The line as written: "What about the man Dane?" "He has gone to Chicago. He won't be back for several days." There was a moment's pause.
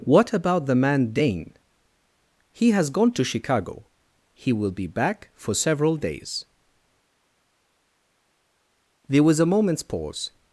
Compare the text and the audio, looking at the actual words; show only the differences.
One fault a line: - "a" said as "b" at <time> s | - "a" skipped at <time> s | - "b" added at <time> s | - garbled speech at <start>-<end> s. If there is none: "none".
- "won't" said as "will" at 4.5 s